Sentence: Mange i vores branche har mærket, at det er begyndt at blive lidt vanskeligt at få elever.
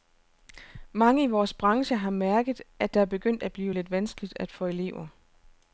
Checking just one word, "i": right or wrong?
right